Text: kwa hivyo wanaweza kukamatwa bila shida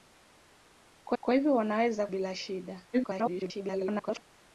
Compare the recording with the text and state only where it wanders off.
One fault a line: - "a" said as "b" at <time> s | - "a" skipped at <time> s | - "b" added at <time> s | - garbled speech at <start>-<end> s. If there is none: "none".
- "kwa" added at 1.2 s
- "kukamatwa" skipped at 2.1 s
- garbled speech at 2.9-4.2 s